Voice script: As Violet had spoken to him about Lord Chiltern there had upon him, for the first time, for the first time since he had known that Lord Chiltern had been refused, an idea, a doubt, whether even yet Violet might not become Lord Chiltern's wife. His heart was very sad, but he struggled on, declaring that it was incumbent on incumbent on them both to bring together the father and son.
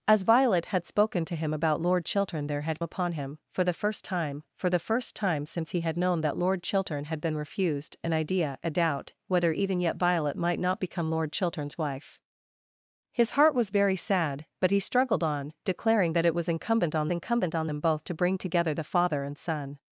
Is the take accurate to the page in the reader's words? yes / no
yes